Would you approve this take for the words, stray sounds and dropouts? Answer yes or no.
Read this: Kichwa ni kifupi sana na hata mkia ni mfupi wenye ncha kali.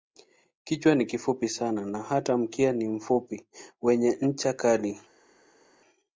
yes